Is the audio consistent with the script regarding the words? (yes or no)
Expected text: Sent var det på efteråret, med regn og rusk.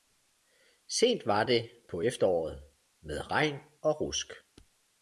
yes